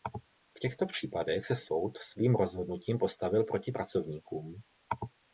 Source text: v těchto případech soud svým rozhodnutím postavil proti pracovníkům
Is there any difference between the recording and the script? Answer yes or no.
yes